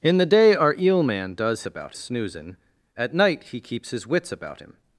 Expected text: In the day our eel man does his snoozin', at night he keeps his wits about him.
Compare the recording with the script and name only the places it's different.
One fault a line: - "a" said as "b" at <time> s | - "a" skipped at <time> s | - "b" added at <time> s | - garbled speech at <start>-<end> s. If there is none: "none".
- "his" said as "about" at 1.7 s